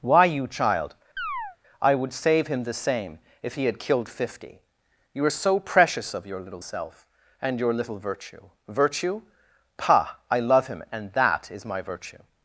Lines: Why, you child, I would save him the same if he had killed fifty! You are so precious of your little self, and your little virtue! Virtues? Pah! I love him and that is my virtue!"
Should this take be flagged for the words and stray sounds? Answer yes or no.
yes